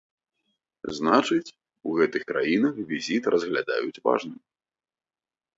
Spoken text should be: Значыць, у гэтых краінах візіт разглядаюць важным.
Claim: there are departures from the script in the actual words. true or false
false